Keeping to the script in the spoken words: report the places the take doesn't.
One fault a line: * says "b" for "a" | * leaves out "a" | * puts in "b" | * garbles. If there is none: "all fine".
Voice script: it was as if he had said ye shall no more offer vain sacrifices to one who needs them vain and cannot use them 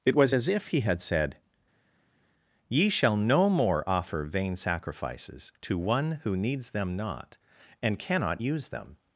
* says "not" for "vain"